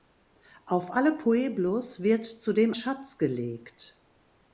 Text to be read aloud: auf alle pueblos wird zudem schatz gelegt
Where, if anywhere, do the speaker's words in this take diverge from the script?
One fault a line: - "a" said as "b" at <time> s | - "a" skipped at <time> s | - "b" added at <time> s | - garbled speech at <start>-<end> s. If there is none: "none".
none